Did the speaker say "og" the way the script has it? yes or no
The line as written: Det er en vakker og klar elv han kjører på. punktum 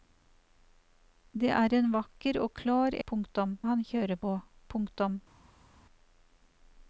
yes